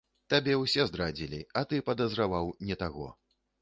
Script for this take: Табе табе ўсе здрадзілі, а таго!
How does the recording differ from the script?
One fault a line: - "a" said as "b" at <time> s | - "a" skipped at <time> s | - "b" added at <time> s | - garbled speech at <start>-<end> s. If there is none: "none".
- "табе" skipped at 0.6 s
- "ты падазраваў не" added at 1.7 s